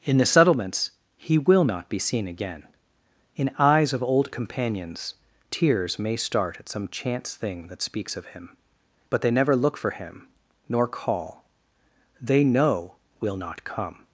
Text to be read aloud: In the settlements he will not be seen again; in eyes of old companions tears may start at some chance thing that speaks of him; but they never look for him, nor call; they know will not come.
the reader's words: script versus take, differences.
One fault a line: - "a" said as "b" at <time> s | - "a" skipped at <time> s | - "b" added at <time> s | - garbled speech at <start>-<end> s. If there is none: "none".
none